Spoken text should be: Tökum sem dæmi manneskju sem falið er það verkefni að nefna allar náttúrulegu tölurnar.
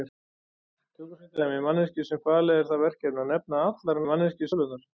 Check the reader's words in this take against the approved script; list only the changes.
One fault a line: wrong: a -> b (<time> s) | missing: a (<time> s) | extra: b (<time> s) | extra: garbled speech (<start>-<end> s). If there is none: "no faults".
wrong: náttúrulegu -> manneskju (4.1 s)